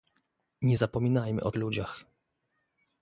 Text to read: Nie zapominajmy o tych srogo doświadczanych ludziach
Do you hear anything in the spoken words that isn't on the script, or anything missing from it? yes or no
yes